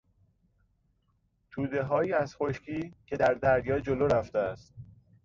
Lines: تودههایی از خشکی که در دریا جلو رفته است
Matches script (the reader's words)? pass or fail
pass